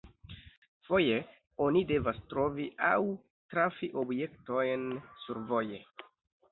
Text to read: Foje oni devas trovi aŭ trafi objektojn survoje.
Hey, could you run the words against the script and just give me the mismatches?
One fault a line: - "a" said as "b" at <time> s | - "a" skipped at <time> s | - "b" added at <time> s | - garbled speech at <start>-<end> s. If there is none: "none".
none